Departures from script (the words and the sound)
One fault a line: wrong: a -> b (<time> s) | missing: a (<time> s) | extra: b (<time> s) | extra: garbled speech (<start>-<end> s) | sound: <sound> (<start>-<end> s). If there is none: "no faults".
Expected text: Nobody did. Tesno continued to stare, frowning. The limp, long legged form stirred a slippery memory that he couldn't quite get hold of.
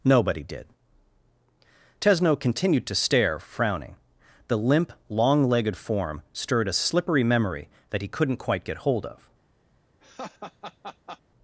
sound: laugh (10.0-11.2 s)